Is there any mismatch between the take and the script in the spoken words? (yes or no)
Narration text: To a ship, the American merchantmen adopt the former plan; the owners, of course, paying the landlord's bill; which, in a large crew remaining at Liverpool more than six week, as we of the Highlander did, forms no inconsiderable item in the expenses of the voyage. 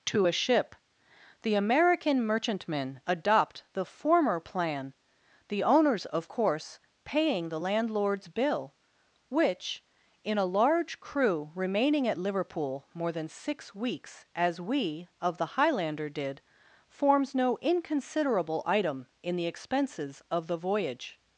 yes